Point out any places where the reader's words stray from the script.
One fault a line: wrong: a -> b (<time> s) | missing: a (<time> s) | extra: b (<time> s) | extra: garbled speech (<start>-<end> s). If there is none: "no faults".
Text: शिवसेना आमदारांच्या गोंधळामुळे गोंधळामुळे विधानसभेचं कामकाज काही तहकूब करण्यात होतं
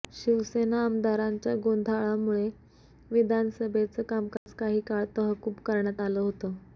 missing: गोंधळामुळे (2.5 s)
extra: काळ (4.9 s)
extra: आलं (6.0 s)